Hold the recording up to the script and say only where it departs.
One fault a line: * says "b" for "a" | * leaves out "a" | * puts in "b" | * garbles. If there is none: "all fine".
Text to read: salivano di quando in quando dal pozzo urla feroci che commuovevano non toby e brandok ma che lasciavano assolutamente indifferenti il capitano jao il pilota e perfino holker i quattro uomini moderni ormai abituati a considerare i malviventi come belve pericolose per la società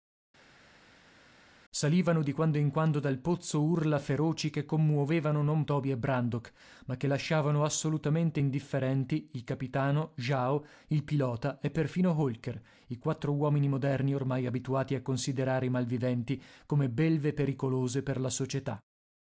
all fine